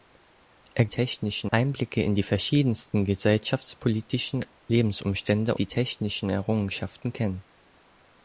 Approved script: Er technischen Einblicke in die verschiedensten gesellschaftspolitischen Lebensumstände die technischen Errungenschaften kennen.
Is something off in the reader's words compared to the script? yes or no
no